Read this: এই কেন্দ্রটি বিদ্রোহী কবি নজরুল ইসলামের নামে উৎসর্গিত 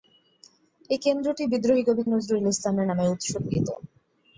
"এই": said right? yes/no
yes